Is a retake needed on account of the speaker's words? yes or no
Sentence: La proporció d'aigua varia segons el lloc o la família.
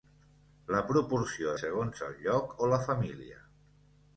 yes